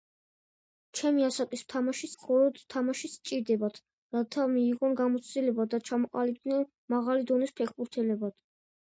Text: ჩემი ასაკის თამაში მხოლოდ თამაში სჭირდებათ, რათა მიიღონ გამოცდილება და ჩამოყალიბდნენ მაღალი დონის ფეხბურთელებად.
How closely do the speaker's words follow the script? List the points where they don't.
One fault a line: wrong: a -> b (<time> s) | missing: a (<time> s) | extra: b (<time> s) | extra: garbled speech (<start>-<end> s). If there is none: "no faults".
no faults